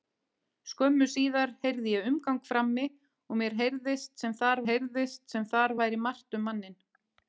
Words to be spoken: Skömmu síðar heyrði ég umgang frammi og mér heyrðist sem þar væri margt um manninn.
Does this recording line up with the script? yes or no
no